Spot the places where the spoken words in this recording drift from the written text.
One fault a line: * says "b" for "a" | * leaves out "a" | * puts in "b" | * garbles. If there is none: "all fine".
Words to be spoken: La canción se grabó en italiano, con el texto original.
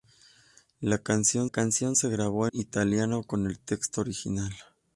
* puts in "canción"
* leaves out "en"